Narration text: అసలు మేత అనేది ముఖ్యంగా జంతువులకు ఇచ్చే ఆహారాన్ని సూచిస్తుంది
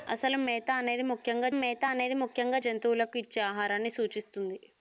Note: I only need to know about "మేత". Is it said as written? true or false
true